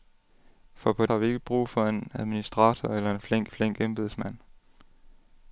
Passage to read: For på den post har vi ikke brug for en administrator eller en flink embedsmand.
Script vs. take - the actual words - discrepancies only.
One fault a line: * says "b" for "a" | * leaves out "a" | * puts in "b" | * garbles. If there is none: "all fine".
* leaves out "den post"
* puts in "flink"